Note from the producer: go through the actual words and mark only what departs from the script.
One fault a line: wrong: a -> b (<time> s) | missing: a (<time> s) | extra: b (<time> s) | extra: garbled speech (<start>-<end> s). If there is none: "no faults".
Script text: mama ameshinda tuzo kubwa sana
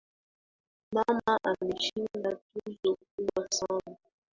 no faults